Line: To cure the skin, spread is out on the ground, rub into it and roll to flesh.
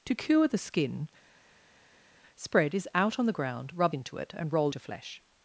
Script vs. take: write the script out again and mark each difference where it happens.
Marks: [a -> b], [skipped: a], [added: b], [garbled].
To cure the skin, spread is out on the ground, rub into it and roll to flesh.